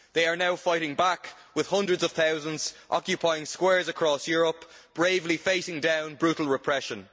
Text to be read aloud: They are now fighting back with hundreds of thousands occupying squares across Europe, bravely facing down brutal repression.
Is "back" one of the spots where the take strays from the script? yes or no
no